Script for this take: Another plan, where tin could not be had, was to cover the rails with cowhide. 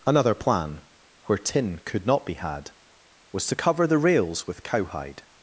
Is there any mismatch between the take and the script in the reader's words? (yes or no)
no